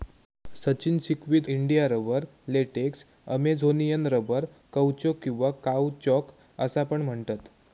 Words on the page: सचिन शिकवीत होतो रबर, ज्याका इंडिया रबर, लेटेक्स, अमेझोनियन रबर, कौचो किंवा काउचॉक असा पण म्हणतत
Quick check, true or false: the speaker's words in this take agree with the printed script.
false